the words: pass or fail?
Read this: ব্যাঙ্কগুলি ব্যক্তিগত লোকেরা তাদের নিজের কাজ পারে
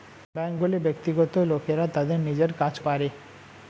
pass